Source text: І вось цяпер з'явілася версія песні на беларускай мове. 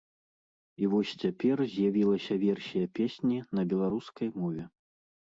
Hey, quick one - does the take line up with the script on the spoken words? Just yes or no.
yes